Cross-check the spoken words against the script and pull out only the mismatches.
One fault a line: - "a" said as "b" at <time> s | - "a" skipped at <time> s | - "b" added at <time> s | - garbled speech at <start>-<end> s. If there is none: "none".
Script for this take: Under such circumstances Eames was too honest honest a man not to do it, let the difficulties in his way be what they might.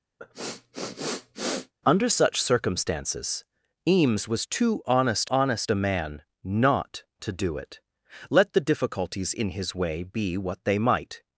none